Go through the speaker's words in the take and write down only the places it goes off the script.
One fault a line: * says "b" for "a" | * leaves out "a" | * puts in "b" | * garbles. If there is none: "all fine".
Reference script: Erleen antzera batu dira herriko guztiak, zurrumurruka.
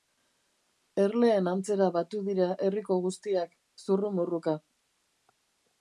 all fine